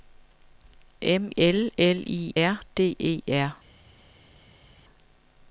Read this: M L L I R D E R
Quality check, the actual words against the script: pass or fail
pass